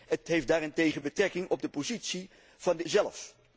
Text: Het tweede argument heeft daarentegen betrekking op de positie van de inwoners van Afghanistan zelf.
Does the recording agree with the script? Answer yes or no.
no